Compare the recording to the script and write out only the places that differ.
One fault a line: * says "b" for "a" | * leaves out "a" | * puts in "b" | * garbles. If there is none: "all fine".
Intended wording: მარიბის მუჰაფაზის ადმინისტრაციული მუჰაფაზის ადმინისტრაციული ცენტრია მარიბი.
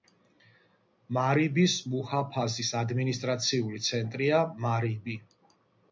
* leaves out "მუჰაფაზის ადმინისტრაციული"